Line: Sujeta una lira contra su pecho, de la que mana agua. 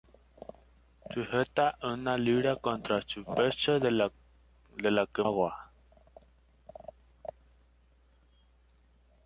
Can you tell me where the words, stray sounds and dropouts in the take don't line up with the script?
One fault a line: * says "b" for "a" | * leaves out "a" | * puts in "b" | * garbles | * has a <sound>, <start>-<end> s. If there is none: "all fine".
* leaves out "mana"